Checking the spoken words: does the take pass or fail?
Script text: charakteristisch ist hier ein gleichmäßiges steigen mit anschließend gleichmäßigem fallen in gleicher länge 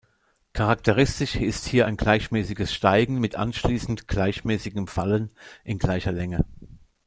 pass